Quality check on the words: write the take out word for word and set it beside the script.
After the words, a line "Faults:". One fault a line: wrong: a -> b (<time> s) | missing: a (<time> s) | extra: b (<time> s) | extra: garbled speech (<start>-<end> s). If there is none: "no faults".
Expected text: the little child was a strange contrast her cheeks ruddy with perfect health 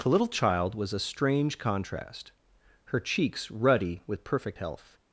the little child was a strange contrast her cheeks ruddy with perfect health
Faults:
no faults